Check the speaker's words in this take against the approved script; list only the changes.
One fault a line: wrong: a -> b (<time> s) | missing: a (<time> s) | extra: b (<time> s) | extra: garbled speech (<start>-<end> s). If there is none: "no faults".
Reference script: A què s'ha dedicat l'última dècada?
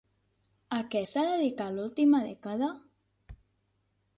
no faults